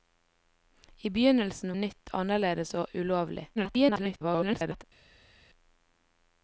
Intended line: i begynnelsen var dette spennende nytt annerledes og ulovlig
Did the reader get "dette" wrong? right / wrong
wrong